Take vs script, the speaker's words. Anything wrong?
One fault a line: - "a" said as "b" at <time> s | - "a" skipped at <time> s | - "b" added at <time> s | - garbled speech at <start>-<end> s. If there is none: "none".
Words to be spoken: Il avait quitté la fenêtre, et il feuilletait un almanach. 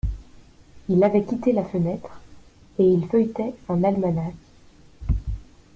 none